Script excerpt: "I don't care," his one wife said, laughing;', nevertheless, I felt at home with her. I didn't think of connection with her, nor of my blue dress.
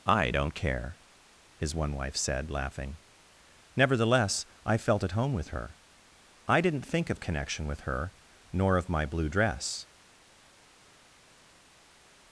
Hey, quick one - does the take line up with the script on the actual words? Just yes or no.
yes